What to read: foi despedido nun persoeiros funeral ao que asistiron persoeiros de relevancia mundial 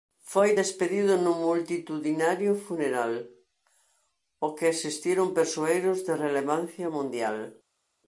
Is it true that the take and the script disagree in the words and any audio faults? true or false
true